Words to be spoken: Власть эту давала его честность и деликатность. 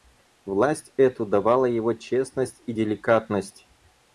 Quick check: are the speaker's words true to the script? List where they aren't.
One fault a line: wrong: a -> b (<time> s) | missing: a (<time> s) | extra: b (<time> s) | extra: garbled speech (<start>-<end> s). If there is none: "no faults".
no faults